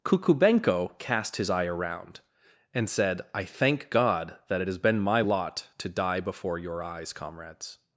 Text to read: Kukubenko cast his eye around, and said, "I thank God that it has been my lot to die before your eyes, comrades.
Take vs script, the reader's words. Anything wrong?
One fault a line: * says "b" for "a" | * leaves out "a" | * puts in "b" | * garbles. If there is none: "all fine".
all fine